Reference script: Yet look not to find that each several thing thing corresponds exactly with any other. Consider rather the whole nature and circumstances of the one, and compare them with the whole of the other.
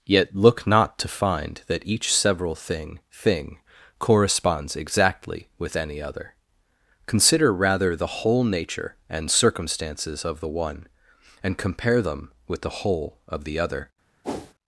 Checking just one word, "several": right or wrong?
right